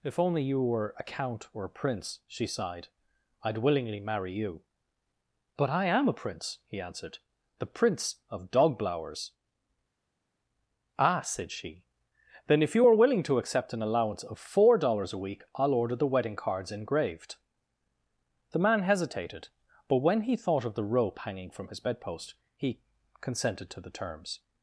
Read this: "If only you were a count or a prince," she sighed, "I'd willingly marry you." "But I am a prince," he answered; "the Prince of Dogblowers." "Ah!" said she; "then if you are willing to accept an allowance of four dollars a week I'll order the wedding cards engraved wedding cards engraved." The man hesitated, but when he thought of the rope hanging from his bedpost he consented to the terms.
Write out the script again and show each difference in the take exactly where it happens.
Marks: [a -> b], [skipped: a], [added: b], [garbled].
"If only you were a count or a prince," she sighed, "I'd willingly marry you." "But I am a prince," he answered; "the Prince of Dogblowers." "Ah!" said she; "then if you are willing to accept an allowance of four dollars a week I'll order the wedding cards engraved [skipped: wedding cards engraved."] The man hesitated, but when he thought of the rope hanging from his bedpost he consented to the terms.